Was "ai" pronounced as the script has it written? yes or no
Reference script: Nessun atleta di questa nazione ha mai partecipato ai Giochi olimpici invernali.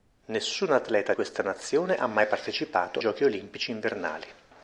no